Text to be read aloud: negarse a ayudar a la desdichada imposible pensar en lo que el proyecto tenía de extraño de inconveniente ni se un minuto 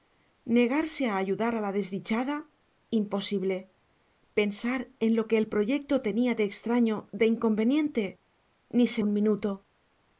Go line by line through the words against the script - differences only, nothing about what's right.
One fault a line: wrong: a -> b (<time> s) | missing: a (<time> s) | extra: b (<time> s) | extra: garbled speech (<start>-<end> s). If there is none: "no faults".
no faults